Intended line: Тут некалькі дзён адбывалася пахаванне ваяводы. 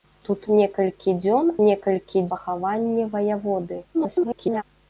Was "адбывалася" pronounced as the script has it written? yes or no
no